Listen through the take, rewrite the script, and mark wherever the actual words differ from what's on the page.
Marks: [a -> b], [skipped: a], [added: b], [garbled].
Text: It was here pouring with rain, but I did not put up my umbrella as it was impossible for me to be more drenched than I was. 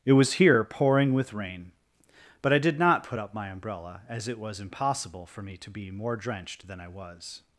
It was here pouring with rain, but I did not put up my umbrella as it was impossible for me to be more drenched than I was.